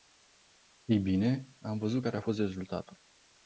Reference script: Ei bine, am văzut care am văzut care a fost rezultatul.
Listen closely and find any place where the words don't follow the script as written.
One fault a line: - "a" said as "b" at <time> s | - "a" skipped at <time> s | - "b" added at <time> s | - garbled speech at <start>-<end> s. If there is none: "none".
- "am văzut care" skipped at 2.2 s